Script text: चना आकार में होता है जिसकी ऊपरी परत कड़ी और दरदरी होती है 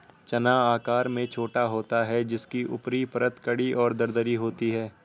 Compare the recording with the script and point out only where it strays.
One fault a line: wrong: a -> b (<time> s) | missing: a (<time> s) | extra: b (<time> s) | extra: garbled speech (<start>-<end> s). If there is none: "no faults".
extra: छोटा (1.3 s)